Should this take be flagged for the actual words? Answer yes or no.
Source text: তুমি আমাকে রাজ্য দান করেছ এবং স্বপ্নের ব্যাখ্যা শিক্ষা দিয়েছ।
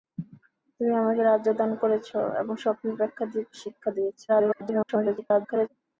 yes